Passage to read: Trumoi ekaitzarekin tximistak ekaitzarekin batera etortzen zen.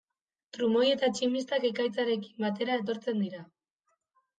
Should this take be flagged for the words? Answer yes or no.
yes